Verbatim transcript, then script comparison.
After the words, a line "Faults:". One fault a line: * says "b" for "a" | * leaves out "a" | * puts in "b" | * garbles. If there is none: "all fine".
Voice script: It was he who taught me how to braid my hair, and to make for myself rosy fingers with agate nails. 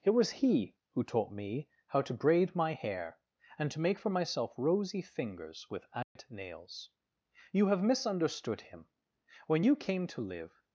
It was he who taught me how to braid my hair, and to make for myself rosy fingers with agate nails. You have misunderstood him. When you came to live
Faults:
* puts in "You have misunderstood him When you came to live"